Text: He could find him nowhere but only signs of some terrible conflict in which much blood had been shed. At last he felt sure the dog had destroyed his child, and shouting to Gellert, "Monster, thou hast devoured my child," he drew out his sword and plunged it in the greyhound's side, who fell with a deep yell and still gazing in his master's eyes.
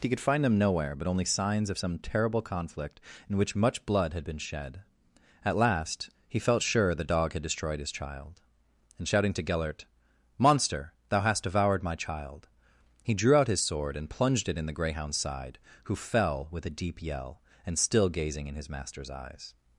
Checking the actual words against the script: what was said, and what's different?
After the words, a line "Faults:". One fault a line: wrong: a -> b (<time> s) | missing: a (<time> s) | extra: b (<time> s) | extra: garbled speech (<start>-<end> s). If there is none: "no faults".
He could find them nowhere but only signs of some terrible conflict in which much blood had been shed. At last he felt sure the dog had destroyed his child, and shouting to Gellert, "Monster, thou hast devoured my child," he drew out his sword and plunged it in the greyhound's side, who fell with a deep yell and still gazing in his master's eyes.
Faults:
wrong: him -> them (0.4 s)